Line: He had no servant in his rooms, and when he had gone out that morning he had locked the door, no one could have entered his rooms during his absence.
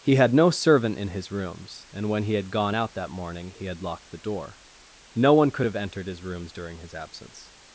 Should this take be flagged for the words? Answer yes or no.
no